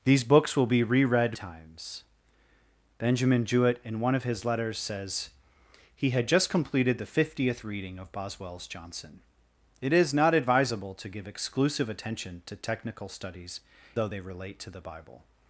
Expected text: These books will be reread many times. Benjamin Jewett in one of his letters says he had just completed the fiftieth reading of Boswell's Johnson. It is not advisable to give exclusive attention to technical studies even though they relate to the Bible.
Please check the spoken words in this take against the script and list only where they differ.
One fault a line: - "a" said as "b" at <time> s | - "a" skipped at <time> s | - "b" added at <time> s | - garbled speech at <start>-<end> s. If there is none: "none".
- "many" skipped at 1.4 s
- "even" skipped at 13.6 s